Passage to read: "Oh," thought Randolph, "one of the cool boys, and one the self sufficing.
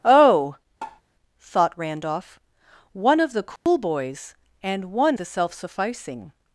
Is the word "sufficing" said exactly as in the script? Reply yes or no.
yes